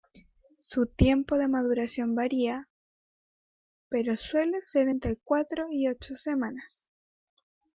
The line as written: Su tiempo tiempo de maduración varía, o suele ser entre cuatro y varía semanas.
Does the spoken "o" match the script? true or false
false